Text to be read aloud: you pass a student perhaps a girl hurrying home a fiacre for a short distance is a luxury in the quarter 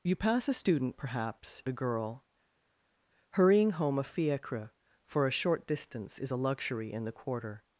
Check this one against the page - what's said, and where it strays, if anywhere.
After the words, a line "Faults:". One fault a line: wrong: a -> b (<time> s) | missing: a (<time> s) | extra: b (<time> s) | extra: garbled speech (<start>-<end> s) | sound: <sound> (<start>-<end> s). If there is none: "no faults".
you pass a student perhaps a girl hurrying home a fiacre for a short distance is a luxury in the quarter
Faults:
no faults